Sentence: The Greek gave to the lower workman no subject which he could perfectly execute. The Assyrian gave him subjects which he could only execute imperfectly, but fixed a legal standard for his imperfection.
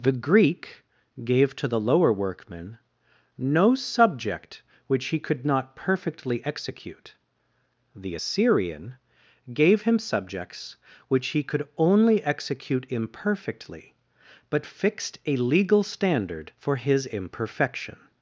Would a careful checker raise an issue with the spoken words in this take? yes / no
yes